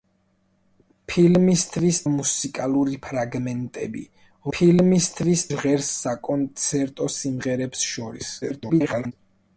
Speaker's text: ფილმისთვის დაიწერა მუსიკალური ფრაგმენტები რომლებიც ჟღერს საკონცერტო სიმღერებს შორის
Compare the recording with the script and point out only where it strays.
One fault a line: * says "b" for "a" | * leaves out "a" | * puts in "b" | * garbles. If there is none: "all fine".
* leaves out "დაიწერა"
* says "ფილმისთვის" for "რომლებიც"
* garbles